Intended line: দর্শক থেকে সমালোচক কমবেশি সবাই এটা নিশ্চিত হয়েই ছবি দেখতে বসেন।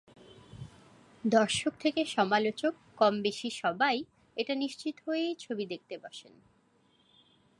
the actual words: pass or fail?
pass